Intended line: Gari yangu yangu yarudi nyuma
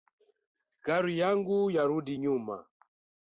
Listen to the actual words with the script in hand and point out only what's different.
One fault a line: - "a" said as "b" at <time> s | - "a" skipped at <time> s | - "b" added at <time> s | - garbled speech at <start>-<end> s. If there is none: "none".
- "yangu" skipped at 1.6 s